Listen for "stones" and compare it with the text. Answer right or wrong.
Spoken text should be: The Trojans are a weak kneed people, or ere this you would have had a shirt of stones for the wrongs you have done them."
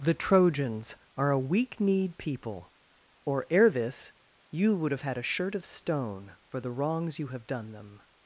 wrong